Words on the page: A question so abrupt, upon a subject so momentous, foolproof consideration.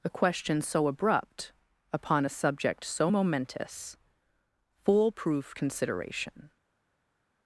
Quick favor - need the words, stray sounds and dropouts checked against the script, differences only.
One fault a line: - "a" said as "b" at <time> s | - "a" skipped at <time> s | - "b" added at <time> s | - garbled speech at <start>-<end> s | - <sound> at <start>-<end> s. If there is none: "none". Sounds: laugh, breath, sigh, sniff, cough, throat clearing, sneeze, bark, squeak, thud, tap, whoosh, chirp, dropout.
none